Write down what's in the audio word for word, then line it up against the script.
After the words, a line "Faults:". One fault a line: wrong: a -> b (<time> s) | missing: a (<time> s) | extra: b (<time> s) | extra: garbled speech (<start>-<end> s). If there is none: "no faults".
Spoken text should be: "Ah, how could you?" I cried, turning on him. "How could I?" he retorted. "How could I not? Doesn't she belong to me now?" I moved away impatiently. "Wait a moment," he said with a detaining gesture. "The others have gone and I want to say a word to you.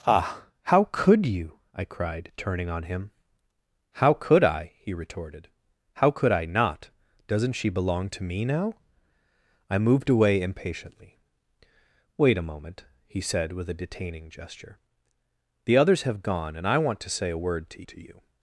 "Ah, how could you?" I cried, turning on him. "How could I?" he retorted. "How could I not? Doesn't she belong to me now?" I moved away impatiently. "Wait a moment," he said with a detaining gesture. "The others have gone and I want to say a word to to you.
Faults:
extra: to (17.9 s)